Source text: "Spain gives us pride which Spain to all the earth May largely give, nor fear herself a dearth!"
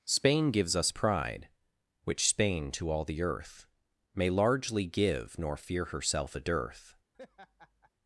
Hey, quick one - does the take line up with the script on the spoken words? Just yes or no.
yes